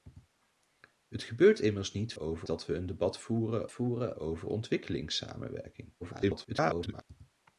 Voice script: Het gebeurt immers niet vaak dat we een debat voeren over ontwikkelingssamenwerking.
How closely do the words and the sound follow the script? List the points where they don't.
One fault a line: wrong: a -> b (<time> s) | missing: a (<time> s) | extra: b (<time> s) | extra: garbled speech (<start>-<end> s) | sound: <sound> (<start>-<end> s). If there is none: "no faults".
wrong: vaak -> over (2.2 s)
extra: voeren (3.7 s)
extra: garbled speech (6.0-7.0 s)